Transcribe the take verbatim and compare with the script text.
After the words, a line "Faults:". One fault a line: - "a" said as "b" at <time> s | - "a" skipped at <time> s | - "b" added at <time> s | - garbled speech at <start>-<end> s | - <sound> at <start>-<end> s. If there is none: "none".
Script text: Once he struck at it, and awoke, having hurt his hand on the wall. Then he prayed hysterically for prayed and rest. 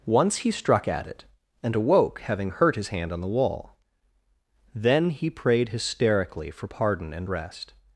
Once he struck at it, and awoke, having hurt his hand on the wall. Then he prayed hysterically for pardon and rest.
Faults:
- "prayed" said as "pardon" at 6.6 s